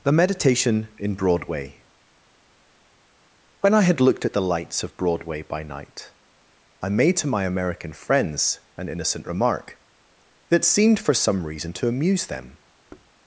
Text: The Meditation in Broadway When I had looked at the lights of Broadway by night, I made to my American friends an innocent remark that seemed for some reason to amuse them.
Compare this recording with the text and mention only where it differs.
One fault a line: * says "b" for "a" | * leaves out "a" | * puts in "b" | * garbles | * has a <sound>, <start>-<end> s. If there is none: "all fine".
* has a thud, 12.9-13.1 s